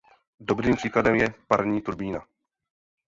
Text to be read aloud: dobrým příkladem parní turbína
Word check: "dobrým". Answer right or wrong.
right